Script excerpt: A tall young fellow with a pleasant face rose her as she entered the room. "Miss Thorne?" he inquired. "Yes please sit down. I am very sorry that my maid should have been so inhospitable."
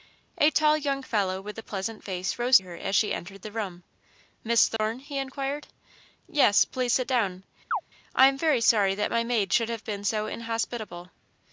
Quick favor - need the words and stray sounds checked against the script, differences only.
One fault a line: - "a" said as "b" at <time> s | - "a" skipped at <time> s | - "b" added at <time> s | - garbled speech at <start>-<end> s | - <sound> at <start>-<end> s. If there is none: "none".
- dropout at 4.8-4.8 s
- chirp at 7.7-7.8 s